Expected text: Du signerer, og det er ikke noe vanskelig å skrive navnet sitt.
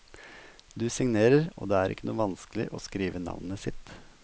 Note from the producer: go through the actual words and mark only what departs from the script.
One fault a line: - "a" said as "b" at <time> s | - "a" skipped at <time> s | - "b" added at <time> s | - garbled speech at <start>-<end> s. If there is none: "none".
none